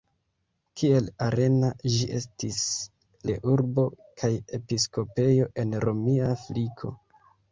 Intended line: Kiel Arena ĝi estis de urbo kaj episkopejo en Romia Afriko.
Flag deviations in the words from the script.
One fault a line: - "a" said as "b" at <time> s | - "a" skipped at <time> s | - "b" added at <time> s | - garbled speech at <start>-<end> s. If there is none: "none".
none